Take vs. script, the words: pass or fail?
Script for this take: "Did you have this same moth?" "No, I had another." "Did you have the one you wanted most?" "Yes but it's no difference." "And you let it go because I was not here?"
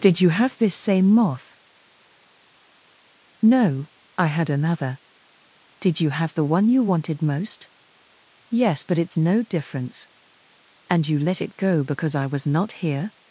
pass